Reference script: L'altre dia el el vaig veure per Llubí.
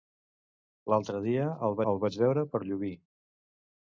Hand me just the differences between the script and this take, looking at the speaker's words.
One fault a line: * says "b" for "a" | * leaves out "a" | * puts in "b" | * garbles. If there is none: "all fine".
all fine